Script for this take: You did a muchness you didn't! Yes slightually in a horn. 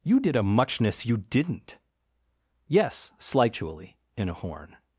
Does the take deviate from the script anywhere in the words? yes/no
no